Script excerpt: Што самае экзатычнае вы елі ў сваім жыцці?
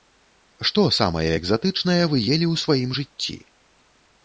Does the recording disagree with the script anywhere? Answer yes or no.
no